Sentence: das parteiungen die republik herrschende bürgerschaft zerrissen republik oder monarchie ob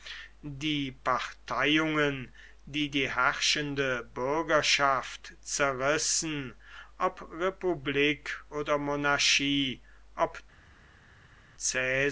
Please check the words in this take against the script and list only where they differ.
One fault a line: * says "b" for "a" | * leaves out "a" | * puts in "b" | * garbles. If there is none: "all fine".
* says "die" for "das"
* says "die" for "republik"
* puts in "ob"